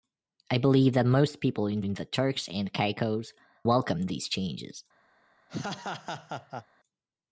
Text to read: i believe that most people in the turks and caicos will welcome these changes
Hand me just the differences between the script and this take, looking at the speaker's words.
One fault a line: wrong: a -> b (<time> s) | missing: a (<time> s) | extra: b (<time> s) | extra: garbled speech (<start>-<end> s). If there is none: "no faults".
extra: in (1.8 s)
missing: will (3.3 s)